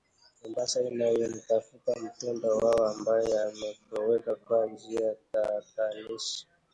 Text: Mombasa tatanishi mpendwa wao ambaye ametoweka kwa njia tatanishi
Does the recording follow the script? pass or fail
fail